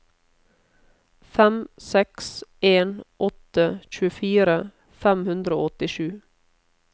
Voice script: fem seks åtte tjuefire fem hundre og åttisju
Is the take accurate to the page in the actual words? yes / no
no